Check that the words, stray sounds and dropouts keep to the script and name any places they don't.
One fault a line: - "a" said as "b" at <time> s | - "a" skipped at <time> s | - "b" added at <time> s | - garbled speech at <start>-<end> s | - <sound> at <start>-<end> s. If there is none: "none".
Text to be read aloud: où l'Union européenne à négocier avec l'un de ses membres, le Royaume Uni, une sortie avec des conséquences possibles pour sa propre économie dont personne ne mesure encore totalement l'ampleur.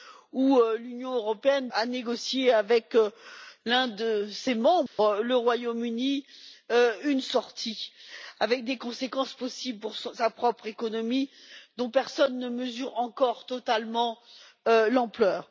- dropout at 4.9-5.0 s